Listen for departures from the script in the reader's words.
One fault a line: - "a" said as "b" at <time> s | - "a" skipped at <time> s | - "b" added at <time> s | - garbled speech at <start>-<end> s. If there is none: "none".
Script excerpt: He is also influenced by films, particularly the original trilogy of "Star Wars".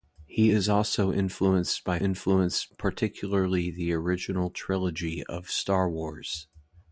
- "films" said as "influenced" at 2.0 s